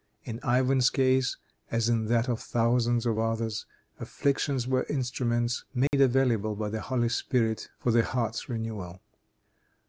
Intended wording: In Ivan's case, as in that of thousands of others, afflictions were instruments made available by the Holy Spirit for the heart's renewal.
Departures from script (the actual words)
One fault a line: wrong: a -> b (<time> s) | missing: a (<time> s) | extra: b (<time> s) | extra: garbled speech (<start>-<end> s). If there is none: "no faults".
no faults